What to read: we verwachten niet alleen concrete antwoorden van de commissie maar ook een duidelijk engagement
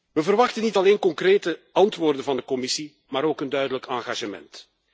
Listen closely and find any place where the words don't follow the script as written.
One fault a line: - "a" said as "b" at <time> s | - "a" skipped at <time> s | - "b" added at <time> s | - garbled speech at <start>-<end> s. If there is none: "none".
none